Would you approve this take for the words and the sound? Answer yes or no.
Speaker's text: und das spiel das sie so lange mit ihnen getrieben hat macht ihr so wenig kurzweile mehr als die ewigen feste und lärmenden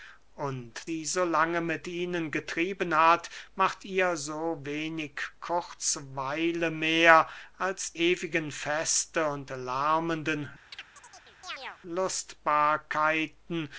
no